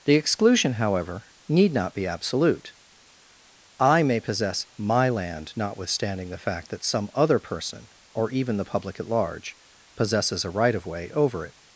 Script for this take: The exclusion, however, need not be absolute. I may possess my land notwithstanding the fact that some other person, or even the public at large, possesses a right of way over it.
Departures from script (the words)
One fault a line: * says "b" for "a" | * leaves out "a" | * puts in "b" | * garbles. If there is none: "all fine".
all fine